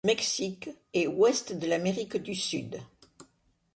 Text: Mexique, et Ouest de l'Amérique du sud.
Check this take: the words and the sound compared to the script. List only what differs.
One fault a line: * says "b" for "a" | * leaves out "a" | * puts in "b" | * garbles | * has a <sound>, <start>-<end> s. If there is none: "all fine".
all fine